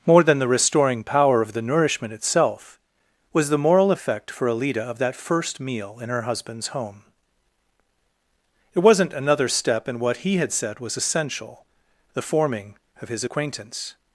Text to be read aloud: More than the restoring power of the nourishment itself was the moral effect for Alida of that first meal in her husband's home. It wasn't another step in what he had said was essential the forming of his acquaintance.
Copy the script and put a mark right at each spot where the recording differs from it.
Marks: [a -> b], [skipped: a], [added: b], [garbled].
More than the restoring power of the nourishment itself was the moral effect for Alida of that first meal in her husband's home. It wasn't another step in what he had said was essential the forming of his acquaintance.